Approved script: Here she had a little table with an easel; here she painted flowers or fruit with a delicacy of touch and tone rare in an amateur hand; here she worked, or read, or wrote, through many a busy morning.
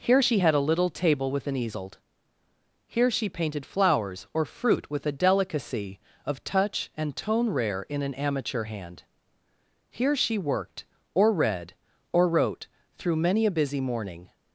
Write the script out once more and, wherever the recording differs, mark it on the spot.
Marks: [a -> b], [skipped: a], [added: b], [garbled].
Here she had a little table with an easel; here she painted flowers or fruit with a delicacy of touch and tone rare in an amateur hand; here she worked, or read, or wrote, through many a busy morning.